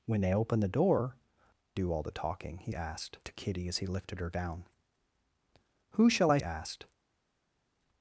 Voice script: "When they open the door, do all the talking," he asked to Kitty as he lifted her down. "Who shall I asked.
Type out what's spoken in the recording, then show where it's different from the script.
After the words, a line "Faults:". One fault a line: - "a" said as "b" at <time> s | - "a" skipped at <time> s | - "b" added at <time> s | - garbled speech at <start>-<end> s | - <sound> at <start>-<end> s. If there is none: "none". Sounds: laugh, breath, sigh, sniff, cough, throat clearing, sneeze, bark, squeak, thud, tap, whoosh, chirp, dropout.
"When they open the door, do all the talking," he asked to Kitty as he lifted her down. "Who shall I asked.
Faults:
none